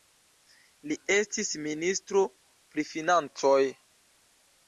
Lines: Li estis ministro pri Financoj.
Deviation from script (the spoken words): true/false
false